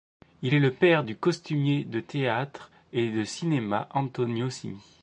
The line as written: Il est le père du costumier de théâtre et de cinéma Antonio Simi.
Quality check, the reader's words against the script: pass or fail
pass